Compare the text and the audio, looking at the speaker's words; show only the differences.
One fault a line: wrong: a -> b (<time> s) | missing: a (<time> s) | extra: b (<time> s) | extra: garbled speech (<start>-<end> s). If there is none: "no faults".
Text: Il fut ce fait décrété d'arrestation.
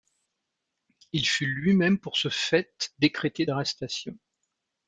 extra: lui même pour (1.4 s)